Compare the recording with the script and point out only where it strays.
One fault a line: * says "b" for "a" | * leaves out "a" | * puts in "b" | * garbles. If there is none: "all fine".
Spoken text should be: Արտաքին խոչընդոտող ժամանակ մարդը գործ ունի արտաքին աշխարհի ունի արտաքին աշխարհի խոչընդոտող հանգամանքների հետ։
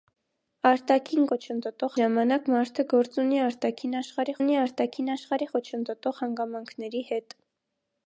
all fine